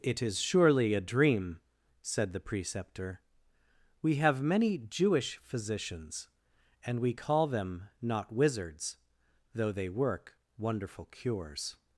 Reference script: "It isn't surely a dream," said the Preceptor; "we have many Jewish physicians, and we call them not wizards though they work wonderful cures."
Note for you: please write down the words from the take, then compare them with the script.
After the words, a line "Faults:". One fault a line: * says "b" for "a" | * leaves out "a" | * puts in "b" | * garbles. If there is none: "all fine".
"It is surely a dream," said the Preceptor; "we have many Jewish physicians, and we call them not wizards though they work wonderful cures."
Faults:
* says "is" for "isn't"